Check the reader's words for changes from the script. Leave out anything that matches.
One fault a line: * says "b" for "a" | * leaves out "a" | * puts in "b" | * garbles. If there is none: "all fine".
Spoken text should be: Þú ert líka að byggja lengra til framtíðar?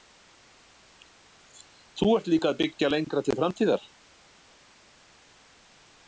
all fine